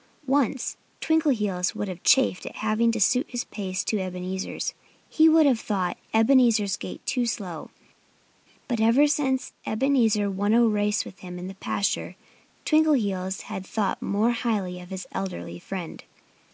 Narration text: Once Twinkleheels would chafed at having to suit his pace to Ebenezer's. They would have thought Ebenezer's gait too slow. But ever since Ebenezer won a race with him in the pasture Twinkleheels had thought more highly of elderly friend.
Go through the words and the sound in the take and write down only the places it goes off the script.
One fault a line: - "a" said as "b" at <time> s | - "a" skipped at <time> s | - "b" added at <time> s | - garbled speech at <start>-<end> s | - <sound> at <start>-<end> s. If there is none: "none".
- "have" added at 1.9 s
- "They" said as "He" at 5.1 s
- "his" added at 14.9 s